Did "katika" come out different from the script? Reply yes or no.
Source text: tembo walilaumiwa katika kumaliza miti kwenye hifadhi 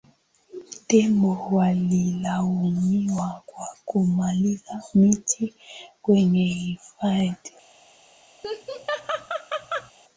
yes